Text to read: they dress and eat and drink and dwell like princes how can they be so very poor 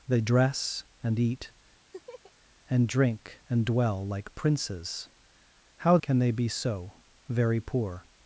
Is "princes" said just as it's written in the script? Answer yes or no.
yes